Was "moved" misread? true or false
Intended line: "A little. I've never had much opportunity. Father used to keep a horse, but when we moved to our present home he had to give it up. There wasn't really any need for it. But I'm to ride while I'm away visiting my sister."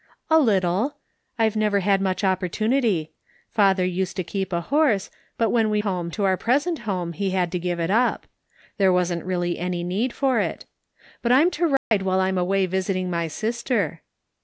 true